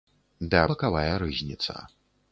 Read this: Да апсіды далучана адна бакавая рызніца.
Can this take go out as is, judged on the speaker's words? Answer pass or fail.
fail